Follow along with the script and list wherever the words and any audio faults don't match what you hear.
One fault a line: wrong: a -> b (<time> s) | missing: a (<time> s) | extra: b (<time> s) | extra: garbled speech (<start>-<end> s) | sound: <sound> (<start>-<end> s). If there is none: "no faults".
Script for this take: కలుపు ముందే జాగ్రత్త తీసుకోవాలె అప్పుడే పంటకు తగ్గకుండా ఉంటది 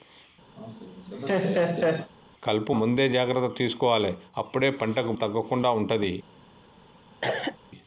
sound: laugh (0.6-2.1 s)
sound: cough (7.2-7.6 s)